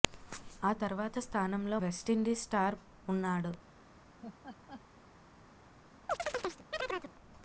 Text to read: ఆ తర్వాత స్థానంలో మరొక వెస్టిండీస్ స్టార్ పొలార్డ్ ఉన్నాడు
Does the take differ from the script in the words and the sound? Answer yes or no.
yes